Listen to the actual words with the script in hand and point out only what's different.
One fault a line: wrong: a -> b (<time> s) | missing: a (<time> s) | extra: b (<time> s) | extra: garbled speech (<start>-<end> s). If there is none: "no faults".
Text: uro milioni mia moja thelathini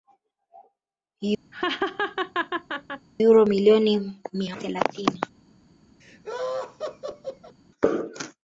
missing: moja (4.6 s)